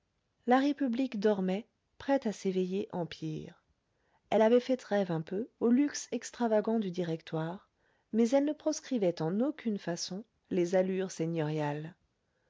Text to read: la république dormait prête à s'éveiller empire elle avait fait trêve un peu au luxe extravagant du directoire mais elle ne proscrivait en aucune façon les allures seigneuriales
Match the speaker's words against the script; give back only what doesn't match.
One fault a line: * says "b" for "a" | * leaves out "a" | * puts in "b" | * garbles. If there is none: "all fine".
all fine